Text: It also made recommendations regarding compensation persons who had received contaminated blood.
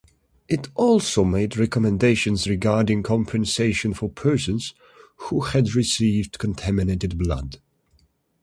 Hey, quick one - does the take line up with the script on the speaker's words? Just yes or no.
no